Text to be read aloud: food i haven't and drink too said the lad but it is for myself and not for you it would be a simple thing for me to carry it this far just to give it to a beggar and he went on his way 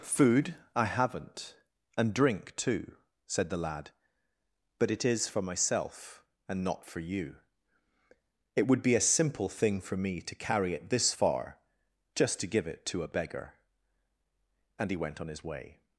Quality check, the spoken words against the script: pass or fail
pass